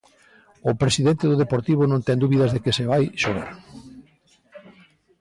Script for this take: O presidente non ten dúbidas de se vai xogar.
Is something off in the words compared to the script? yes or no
yes